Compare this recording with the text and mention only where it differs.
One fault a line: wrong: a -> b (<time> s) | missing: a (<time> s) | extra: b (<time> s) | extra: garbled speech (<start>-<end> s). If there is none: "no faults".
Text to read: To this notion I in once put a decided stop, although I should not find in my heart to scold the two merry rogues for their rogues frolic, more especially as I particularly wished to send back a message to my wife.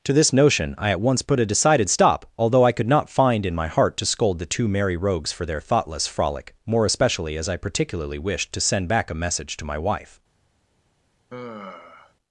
wrong: in -> at (0.9 s)
wrong: should -> could (2.7 s)
wrong: rogues -> thoughtless (5.6 s)